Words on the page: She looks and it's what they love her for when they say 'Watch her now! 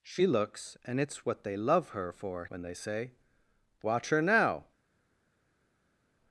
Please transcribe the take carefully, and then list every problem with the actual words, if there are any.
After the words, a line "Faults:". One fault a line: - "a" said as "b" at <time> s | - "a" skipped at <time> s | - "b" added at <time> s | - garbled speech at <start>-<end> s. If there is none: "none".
She looks and it's what they love her for when they say 'Watch her now!
Faults:
none